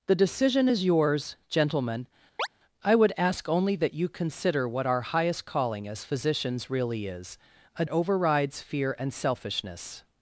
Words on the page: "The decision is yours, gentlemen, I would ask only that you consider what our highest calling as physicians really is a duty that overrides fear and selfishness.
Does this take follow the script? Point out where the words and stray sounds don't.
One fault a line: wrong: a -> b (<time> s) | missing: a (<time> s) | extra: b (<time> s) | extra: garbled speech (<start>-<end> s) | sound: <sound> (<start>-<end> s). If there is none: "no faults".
sound: chirp (2.4-2.5 s)
missing: duty that (7.8 s)